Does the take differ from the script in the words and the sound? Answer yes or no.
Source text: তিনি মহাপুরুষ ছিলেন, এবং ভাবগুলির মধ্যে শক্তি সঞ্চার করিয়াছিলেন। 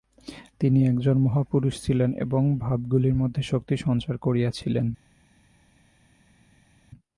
yes